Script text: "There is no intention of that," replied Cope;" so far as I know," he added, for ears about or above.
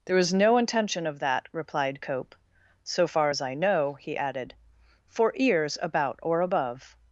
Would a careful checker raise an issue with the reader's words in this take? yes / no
no